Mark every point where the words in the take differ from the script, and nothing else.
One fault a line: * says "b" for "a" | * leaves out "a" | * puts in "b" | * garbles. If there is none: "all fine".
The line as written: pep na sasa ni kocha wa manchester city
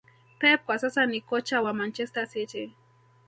* says "kwa" for "na"